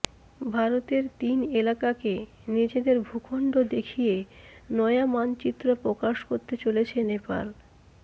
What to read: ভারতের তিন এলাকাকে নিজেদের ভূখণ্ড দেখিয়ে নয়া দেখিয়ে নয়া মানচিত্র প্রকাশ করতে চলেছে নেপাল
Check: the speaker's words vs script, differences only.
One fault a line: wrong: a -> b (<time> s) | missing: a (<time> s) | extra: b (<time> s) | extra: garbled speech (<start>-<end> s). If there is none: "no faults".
missing: দেখিয়ে নয়া (5.0 s)